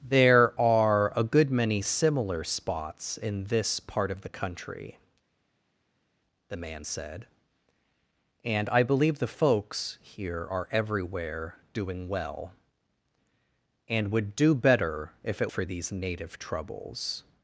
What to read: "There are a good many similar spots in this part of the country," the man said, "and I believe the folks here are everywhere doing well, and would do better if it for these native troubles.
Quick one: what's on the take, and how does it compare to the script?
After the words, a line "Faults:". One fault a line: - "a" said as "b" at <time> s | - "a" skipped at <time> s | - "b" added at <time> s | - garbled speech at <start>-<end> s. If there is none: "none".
"There are a good many similar spots in this part of the country," the man said, "and I believe the folks here are everywhere doing well, and would do better if it for these native troubles.
Faults:
none